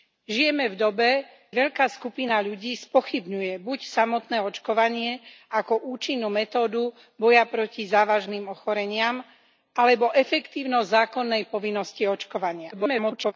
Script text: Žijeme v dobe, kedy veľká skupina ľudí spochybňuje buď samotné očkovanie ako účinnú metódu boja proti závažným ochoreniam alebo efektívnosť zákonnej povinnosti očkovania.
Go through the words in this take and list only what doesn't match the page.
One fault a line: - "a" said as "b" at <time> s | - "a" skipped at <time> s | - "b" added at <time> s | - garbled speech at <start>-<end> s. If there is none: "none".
- "kedy" skipped at 1.1 s
- garbled speech at 12.7-13.3 s